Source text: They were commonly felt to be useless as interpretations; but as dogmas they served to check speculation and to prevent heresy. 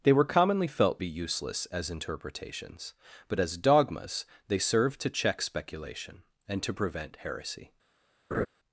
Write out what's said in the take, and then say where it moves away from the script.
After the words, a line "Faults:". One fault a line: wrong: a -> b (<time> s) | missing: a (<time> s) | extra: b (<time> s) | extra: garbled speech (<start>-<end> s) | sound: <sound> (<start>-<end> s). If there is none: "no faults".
They were commonly felt be useless as interpretations; but as dogmas they served to check speculation and to prevent heresy.
Faults:
missing: to (1.0 s)
sound: laugh (8.3-8.5 s)